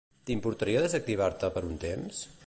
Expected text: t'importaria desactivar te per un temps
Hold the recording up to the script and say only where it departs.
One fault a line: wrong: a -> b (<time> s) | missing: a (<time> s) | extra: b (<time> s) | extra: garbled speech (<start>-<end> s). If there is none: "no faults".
no faults